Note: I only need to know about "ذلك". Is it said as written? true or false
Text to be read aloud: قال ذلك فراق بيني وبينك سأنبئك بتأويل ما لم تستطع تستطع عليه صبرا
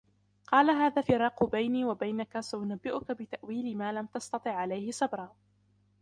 false